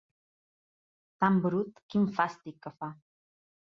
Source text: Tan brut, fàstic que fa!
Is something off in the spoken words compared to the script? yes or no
yes